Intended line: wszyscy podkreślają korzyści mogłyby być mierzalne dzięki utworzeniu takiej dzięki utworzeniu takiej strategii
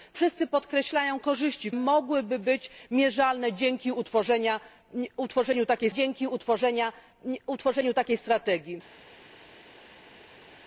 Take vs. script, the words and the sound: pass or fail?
pass